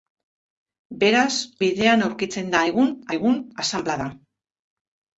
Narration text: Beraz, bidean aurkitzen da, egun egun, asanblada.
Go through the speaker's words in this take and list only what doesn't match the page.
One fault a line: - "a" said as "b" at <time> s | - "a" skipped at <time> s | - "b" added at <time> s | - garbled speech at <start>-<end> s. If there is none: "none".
none